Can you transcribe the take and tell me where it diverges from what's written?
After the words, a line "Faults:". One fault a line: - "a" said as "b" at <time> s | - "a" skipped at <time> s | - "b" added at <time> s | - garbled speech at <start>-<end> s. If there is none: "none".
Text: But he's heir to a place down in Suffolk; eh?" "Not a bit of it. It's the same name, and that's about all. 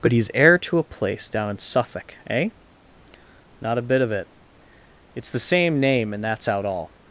But he's heir to a place down in Suffolk; eh?" "Not a bit of it. It's the same name, and that's out all.
Faults:
- "about" said as "out" at 6.5 s